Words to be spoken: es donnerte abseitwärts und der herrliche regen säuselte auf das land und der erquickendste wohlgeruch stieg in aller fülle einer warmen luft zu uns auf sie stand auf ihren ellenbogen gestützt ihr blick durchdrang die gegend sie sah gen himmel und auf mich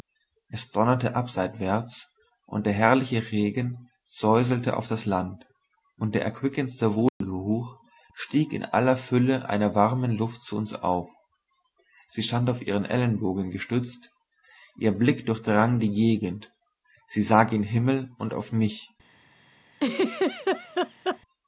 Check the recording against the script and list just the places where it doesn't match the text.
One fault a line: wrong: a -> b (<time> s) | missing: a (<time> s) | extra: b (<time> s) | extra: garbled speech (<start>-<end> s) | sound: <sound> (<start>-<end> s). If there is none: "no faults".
sound: dropout (7.1-7.2 s)
sound: laugh (19.7-21.2 s)